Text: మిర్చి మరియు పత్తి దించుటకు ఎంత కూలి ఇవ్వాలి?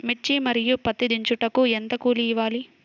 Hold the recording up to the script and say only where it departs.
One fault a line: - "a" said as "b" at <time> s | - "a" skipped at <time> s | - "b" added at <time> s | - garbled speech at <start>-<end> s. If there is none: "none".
none